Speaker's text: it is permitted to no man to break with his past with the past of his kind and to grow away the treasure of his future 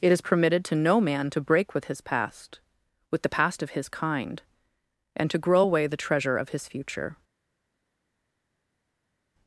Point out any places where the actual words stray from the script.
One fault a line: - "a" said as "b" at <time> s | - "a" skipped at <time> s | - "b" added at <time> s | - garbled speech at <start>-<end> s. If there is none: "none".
none